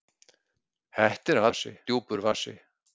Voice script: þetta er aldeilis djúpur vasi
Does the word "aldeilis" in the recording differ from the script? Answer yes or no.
yes